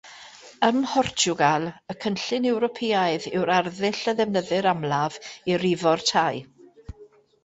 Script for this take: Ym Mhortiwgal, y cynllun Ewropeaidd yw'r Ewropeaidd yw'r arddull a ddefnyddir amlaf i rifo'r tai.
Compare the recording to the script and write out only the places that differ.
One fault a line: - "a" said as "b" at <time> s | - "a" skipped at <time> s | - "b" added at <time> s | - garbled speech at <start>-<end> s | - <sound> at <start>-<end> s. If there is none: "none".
- "Ewropeaidd yw'r" skipped at 3.5 s